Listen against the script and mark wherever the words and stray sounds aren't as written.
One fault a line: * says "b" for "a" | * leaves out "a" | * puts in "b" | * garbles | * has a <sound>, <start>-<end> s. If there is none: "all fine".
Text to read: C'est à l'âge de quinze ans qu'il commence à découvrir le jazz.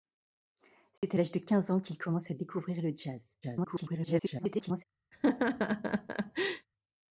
* has a dropout, 1.0-1.0 s
* garbles
* has a laugh, 5.1-6.7 s